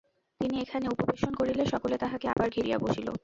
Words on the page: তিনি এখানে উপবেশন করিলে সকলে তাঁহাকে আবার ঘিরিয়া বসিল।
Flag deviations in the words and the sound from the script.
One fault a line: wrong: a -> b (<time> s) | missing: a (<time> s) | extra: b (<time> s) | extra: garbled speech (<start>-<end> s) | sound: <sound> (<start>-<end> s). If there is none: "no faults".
sound: dropout (2.3-2.4 s)